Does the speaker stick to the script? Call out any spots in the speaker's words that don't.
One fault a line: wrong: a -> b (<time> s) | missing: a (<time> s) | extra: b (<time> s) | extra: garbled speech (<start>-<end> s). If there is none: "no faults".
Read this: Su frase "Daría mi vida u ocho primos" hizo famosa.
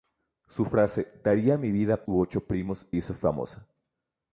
no faults